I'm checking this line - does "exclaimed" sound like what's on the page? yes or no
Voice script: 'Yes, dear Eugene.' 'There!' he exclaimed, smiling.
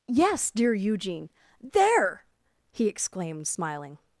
yes